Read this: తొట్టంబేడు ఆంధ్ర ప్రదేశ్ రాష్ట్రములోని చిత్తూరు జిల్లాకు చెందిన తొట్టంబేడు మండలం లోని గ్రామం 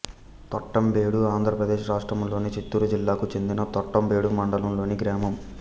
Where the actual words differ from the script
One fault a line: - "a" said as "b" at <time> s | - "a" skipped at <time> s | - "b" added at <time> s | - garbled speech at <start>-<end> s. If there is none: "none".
none